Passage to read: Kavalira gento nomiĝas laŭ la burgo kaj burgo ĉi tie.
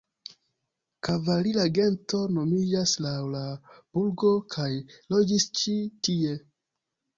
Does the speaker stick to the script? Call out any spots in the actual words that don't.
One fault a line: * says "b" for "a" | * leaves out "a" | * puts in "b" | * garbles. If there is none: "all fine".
* says "loĝis" for "burgo"